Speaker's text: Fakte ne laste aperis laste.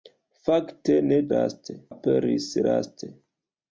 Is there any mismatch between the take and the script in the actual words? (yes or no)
no